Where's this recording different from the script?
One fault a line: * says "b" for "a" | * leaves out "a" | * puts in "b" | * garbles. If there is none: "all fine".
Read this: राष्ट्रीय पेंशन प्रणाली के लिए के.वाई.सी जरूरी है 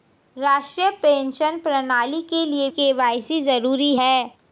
all fine